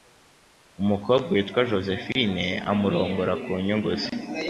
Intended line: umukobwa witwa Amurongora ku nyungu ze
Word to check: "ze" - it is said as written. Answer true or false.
true